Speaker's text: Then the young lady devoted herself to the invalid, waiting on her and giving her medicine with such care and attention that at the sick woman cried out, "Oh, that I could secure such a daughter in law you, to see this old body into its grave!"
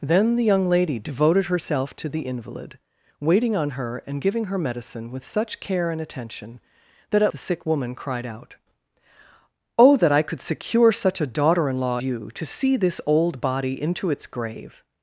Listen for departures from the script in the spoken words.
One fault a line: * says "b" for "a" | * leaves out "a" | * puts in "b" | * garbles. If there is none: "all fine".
all fine